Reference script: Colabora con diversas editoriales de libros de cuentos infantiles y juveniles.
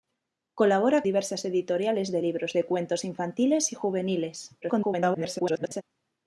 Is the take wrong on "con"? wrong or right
wrong